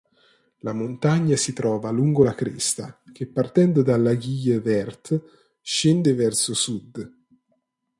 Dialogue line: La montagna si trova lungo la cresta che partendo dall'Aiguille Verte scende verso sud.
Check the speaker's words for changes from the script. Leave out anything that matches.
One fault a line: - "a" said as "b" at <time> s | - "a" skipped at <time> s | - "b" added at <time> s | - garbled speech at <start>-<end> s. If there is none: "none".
none